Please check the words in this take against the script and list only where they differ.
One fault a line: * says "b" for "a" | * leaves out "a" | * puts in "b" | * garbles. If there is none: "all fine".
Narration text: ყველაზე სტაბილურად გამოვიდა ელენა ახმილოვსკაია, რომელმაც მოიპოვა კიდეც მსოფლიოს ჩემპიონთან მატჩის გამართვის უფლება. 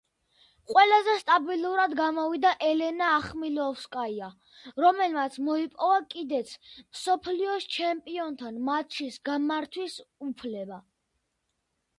all fine